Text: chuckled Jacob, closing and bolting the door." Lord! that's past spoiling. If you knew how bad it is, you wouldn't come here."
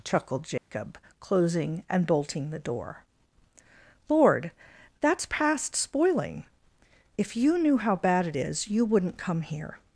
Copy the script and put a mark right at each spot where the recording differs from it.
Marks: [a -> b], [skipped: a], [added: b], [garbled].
chuckled Jacob, closing and bolting the door." Lord! that's past spoiling. If you knew how bad it is, you wouldn't come here."